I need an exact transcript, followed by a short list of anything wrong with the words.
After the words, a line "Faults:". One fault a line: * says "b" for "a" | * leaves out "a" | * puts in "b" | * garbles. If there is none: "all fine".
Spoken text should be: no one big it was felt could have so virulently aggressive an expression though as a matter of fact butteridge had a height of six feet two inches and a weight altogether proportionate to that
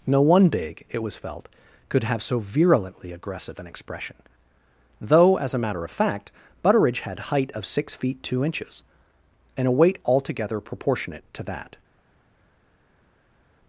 no one big it was felt could have so virulently aggressive an expression though as a matter of fact butteridge had height of six feet two inches and a weight altogether proportionate to that
Faults:
* leaves out "a"